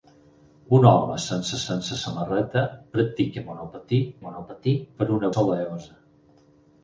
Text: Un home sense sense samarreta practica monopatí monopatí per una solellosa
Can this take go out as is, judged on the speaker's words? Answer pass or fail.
pass